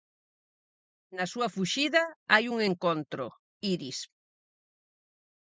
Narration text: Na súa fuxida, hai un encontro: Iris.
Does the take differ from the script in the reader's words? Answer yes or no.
no